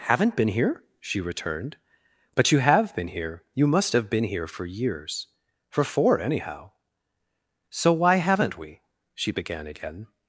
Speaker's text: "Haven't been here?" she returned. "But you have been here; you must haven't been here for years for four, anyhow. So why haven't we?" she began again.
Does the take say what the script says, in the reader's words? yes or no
no